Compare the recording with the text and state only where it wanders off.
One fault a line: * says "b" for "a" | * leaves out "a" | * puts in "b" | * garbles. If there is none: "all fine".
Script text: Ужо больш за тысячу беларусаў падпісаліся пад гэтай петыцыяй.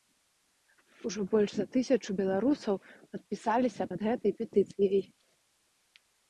all fine